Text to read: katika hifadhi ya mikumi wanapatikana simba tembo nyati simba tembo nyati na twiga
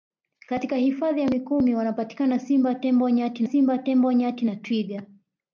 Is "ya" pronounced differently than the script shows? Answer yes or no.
no